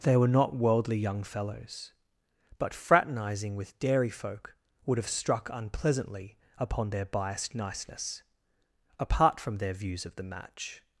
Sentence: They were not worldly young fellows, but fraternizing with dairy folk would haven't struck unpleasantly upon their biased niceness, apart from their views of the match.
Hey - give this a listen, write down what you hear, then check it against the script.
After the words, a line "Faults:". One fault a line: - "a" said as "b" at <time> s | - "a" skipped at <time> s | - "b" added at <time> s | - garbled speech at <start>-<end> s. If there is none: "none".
They were not worldly young fellows, but fraternizing with dairy folk would have struck unpleasantly upon their biased niceness, apart from their views of the match.
Faults:
- "haven't" said as "have" at 5.0 s